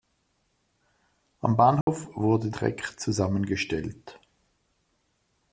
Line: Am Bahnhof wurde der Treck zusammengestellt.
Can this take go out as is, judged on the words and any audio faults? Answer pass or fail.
fail